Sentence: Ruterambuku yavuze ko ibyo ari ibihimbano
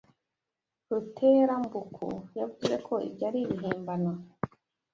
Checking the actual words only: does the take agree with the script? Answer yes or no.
yes